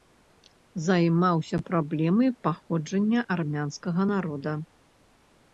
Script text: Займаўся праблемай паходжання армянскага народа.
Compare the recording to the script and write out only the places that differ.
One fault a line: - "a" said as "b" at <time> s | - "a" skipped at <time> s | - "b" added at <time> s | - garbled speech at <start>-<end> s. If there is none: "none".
none